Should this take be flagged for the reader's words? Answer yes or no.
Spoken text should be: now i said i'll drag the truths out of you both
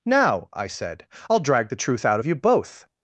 yes